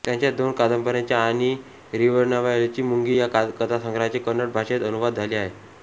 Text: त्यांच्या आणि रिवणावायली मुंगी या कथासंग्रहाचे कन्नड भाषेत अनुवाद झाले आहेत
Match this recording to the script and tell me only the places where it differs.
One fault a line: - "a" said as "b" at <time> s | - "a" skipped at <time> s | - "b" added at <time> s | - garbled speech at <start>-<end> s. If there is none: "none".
- "दोन कादंबऱ्यांचे" added at 0.3 s